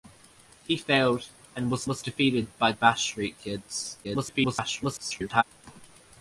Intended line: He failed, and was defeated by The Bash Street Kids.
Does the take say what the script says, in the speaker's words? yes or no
no